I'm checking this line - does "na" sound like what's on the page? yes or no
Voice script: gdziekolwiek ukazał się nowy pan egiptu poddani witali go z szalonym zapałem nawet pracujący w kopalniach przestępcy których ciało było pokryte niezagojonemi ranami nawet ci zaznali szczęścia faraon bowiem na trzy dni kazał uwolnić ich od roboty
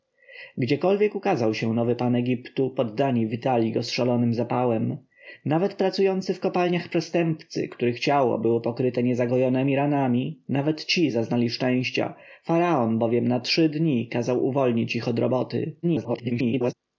yes